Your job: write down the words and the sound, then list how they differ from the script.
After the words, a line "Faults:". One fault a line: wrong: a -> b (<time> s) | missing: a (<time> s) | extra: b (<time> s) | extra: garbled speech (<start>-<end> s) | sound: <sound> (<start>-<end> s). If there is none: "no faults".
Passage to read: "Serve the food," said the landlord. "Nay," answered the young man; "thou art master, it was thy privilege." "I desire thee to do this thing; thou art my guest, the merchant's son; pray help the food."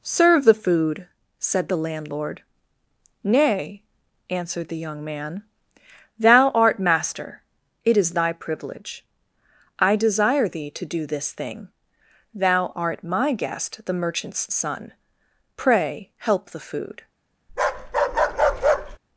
"Serve the food," said the landlord. "Nay," answered the young man; "thou art master, it is thy privilege." "I desire thee to do this thing; thou art my guest, the merchant's son; pray help the food."
Faults:
wrong: was -> is (8.0 s)
sound: bark (17.5-19.0 s)